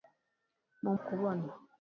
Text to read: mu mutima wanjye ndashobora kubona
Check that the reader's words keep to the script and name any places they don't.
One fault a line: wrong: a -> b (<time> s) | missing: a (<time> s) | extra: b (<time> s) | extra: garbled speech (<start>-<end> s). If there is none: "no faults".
missing: mutima wanjye ndashobora (0.9 s)